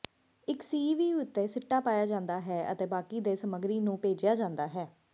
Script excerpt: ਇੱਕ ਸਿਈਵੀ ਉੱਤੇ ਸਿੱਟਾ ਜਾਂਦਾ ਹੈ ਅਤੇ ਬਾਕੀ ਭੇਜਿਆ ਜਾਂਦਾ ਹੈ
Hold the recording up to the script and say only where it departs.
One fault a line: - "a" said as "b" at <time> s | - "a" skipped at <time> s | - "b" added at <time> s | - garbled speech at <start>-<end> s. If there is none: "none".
- "ਪਾਇਆ" added at 1.8 s
- "ਦੇ ਸਮੱਗਰੀ ਨੂੰ" added at 3.2 s